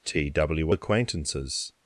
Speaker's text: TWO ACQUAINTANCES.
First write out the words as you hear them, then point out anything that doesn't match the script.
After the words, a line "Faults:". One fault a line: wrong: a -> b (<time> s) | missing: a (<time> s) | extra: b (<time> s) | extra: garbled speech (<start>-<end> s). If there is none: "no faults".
TWO ACQUAINTANCES.
Faults:
no faults